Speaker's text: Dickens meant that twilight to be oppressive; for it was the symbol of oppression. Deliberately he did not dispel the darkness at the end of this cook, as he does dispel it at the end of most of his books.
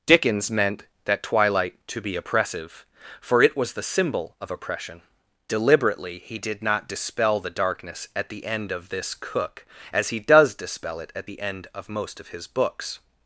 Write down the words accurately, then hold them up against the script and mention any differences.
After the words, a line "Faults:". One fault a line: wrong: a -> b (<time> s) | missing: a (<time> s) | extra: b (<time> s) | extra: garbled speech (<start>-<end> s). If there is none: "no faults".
Dickens meant that twilight to be oppressive; for it was the symbol of oppression. Deliberately he did not dispel the darkness at the end of this cook, as he does dispel it at the end of most of his books.
Faults:
no faults